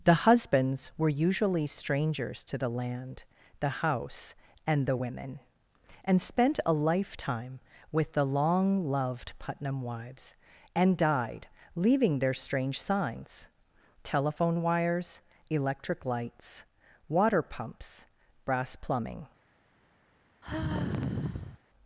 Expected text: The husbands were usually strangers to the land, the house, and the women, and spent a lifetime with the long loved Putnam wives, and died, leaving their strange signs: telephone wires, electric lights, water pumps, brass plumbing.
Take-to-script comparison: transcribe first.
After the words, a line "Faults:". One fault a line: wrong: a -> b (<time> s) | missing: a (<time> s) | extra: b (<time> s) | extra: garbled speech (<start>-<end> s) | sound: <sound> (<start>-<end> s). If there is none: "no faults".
The husbands were usually strangers to the land, the house, and the women, and spent a lifetime with the long loved Putnam wives, and died, leaving their strange signs: telephone wires, electric lights, water pumps, brass plumbing.
Faults:
sound: sigh (20.4-21.6 s)